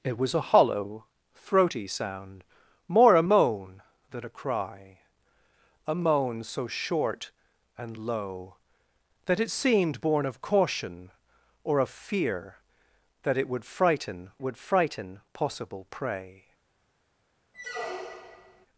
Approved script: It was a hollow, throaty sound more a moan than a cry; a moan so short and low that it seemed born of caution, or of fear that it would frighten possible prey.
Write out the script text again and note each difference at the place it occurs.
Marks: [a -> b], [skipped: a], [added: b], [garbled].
It was a hollow, throaty sound more a moan than a cry; a moan so short and low that it seemed born of caution, or of fear that it would frighten [added: would frighten] possible prey.